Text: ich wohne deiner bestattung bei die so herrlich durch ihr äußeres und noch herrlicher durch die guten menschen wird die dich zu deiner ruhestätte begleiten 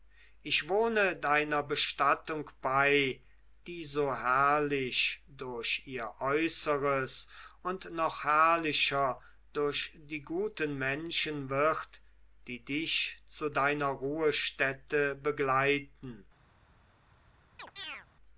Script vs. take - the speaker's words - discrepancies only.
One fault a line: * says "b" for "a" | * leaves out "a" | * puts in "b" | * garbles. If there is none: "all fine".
all fine